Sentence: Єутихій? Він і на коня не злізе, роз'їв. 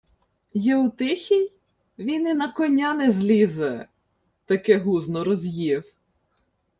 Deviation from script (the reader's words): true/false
true